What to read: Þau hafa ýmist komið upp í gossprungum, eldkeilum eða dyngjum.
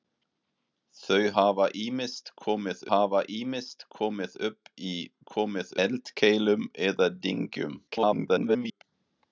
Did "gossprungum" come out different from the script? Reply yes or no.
yes